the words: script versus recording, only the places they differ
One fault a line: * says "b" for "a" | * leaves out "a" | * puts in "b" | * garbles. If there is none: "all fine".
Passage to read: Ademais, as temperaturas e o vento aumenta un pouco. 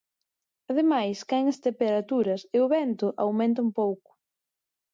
* puts in "caen"